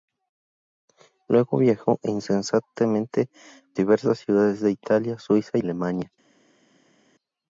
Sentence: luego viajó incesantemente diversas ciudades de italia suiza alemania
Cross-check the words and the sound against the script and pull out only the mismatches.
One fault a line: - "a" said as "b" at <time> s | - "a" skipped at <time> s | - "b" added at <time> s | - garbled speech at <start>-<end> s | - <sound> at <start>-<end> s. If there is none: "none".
none